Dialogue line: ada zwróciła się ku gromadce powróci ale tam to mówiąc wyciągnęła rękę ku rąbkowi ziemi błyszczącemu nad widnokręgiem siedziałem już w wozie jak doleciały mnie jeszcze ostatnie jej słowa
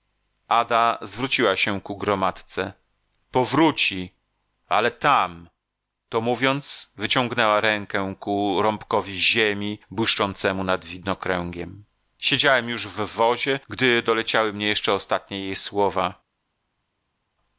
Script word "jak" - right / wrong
wrong